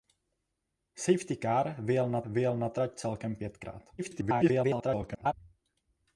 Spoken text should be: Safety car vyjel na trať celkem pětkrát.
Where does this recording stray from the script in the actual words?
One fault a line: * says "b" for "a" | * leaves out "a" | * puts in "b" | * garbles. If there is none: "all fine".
* puts in "vyjel na"
* garbles